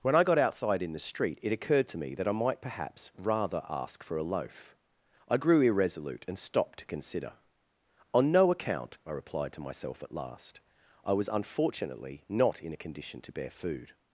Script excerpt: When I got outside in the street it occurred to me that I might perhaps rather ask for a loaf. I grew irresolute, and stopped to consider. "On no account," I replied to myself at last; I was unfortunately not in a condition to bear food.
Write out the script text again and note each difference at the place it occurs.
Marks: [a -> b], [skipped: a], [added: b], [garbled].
When I got outside in the street it occurred to me that I might perhaps rather ask for a loaf. I grew irresolute, and stopped to consider. "On no account," I replied to myself at last; I was unfortunately not in a condition to bear food.